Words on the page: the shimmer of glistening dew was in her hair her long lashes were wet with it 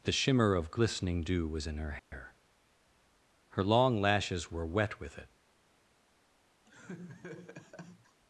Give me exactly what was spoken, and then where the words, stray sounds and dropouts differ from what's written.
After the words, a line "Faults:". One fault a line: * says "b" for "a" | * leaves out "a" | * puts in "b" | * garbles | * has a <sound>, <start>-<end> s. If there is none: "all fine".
the shimmer of glistening dew was in her hair her long lashes were wet with it
Faults:
* has a dropout, 2.0-2.1 s
* has a laugh, 6.6-8.2 s